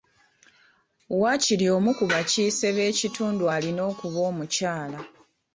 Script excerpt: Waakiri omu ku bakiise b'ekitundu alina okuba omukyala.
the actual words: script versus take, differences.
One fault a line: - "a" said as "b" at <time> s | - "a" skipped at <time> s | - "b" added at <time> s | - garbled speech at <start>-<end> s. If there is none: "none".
none